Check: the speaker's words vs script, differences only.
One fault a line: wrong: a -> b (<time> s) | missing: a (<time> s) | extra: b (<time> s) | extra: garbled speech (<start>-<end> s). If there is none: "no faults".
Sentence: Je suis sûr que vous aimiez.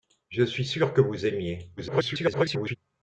extra: garbled speech (1.8-2.8 s)